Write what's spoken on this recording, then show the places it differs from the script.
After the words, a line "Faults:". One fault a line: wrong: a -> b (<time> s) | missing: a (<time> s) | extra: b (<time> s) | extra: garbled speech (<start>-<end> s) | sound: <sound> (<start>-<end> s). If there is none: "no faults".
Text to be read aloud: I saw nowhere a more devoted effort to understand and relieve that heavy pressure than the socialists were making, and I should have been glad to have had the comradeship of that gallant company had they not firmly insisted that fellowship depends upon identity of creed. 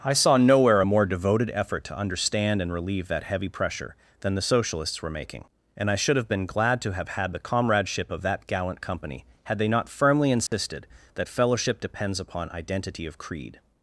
I saw nowhere a more devoted effort to understand and relieve that heavy pressure than the socialists were making, and I should have been glad to have had the comradeship of that gallant company had they not firmly insisted that fellowship depends upon identity of creed.
Faults:
sound: dropout (10.5-10.5 s)